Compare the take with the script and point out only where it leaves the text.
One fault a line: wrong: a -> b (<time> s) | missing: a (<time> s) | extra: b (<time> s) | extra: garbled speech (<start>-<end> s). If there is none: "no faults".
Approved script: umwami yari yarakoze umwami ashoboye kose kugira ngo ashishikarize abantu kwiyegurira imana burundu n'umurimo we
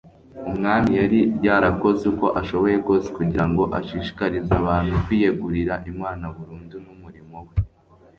wrong: umwami -> uko (2.1 s)